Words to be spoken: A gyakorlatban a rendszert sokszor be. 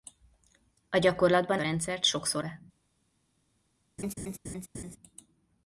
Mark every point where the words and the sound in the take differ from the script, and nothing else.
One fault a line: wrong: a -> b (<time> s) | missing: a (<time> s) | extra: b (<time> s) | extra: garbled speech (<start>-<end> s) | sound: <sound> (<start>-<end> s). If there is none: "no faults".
sound: laugh (4.0-5.0 s)